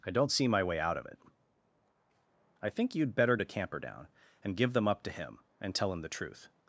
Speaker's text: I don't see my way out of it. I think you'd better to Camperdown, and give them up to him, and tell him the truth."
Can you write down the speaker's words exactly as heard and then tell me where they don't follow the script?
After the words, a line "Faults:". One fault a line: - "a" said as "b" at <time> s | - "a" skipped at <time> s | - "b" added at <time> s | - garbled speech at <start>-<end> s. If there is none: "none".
I don't see my way out of it. I think you'd better to Camperdown, and give them up to him, and tell him the truth."
Faults:
none